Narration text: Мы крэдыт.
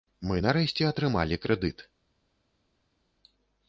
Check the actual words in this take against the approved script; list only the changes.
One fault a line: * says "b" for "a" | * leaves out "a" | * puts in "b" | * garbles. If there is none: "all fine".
* puts in "нарэшце атрымалі"